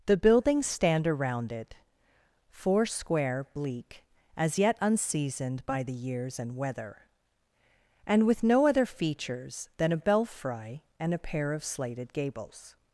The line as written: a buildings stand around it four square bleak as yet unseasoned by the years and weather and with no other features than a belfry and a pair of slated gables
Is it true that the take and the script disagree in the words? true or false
true